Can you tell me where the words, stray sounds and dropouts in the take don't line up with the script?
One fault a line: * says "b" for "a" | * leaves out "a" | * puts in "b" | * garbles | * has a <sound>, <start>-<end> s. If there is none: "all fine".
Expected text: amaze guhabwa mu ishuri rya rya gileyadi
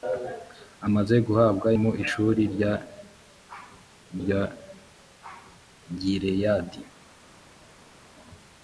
all fine